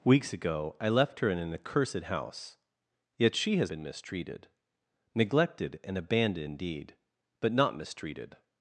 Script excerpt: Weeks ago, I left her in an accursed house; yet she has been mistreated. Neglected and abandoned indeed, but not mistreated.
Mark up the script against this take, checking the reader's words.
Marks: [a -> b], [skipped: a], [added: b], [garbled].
Weeks ago, I left her in an accursed house; yet she has been mistreated. Neglected and abandoned indeed, but not mistreated.